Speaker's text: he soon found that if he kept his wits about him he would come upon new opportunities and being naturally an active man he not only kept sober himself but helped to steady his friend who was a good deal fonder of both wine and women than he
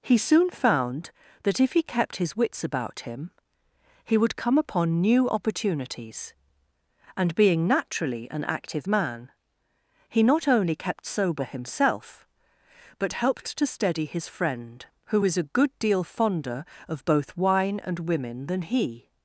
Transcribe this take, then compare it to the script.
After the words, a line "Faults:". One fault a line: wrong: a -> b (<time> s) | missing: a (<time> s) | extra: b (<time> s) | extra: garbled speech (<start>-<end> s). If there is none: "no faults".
he soon found that if he kept his wits about him he would come upon new opportunities and being naturally an active man he not only kept sober himself but helped to steady his friend who was a good deal fonder of both wine and women than he
Faults:
no faults